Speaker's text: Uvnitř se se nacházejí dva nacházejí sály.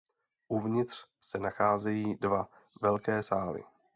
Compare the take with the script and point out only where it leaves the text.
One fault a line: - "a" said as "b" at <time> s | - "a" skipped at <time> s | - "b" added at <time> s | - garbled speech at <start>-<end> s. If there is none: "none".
- "se" skipped at 1.4 s
- "nacházejí" said as "velké" at 2.8 s